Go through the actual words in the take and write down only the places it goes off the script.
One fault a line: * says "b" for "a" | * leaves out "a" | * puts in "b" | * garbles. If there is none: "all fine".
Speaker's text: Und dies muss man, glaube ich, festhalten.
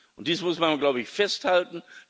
all fine